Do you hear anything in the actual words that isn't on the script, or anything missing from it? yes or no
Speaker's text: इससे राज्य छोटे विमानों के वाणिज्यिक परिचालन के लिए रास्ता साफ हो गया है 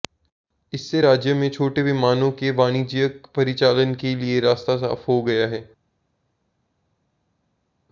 yes